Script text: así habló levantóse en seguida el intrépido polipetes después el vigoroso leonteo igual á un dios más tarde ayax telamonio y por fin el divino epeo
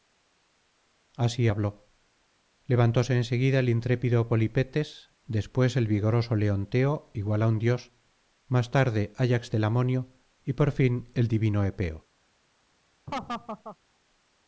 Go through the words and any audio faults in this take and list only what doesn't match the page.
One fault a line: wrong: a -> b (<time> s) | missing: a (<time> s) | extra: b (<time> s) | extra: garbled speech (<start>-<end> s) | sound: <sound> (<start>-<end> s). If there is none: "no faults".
sound: laugh (13.1-13.8 s)